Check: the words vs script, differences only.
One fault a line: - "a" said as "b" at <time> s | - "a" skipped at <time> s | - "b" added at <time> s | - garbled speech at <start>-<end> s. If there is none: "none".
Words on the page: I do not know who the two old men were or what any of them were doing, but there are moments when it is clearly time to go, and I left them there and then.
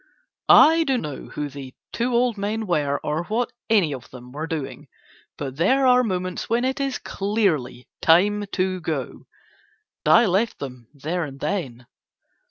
- "not" skipped at 1.0 s
- "and" skipped at 9.3 s